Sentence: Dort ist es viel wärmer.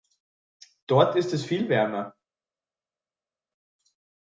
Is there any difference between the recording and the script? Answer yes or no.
no